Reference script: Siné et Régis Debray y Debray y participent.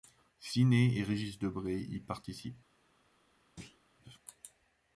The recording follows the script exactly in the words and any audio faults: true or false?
false